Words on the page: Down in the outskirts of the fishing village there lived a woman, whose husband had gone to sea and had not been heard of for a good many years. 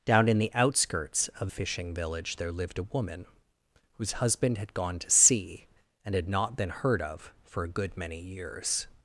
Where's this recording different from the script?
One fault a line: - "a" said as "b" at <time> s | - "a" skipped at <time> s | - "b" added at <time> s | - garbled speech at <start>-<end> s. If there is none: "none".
- "the" skipped at 1.5 s